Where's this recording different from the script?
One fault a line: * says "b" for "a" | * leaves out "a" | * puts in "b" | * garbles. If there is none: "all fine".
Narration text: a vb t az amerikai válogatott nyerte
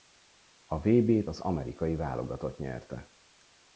all fine